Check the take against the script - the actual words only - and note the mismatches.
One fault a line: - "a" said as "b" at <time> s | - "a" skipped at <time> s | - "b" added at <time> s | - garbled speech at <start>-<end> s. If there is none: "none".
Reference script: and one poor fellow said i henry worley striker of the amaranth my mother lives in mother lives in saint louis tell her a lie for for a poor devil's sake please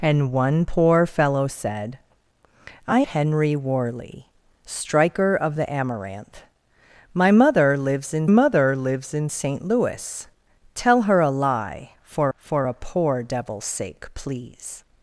none